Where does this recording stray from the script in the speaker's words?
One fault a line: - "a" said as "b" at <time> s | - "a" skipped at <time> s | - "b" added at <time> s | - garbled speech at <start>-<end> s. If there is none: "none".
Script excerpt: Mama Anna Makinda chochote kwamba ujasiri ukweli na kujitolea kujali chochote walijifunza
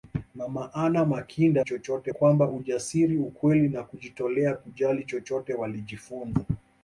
none